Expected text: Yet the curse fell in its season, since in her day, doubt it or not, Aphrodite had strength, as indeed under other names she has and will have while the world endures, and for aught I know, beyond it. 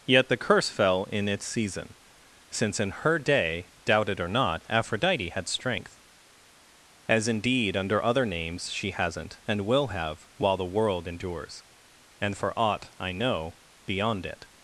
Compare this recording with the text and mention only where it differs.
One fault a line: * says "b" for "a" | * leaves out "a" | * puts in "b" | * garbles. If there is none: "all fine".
* says "hasn't" for "has"